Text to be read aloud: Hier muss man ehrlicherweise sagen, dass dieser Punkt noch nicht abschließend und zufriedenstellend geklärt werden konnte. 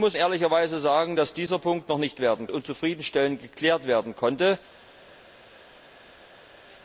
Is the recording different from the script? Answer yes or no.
yes